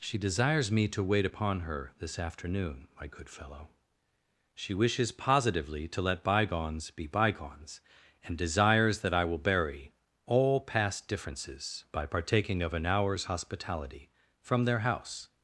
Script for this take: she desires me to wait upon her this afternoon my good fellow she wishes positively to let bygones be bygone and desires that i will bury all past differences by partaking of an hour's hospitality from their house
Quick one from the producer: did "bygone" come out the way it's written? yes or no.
no